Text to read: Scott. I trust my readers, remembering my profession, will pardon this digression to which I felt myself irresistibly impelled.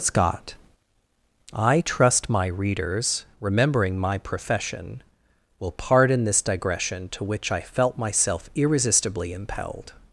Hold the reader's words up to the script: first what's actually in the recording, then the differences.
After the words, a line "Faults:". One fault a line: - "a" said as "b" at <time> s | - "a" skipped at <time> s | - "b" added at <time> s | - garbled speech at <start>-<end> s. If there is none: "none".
Scott. I trust my readers, remembering my profession, will pardon this digression to which I felt myself irresistibly impelled.
Faults:
none